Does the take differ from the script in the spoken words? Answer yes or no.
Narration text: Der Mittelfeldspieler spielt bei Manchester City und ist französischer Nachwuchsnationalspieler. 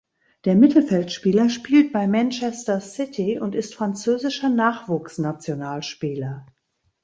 no